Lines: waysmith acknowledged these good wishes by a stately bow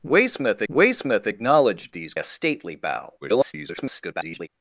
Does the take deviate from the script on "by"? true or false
true